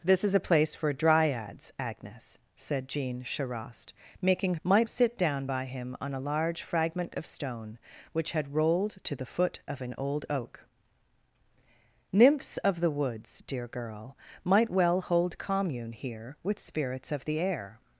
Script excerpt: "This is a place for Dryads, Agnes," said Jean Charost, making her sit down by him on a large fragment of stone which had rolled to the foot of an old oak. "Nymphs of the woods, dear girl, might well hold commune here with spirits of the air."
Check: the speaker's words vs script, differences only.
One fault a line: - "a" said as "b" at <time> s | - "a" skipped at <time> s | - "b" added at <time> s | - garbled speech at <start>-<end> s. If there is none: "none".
- "her" said as "might" at 4.6 s